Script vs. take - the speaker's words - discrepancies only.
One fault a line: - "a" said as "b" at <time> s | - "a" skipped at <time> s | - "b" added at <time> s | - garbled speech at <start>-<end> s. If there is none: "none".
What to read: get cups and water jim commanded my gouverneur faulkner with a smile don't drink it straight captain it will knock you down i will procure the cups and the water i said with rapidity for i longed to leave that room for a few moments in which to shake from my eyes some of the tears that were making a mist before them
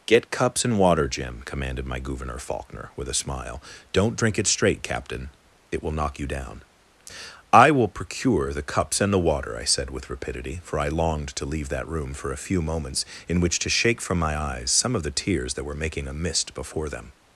none